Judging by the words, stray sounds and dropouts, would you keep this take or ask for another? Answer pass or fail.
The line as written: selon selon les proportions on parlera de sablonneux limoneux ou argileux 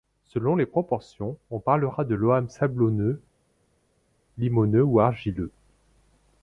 fail